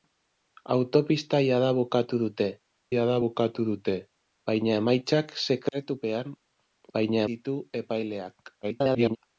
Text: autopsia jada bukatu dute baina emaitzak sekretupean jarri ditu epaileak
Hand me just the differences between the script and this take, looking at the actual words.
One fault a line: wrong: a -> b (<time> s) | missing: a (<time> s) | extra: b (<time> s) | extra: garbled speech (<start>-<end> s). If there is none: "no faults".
extra: jada bukatu dute (2.9 s)
wrong: jarri -> baina (7.0 s)
extra: garbled speech (8.6-9.2 s)